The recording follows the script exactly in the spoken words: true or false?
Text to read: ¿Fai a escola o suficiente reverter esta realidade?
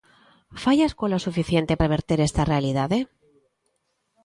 true